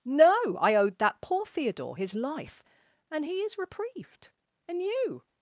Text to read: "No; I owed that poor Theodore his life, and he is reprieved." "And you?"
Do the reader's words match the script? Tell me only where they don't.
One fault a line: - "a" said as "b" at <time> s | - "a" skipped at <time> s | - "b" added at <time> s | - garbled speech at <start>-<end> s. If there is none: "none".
none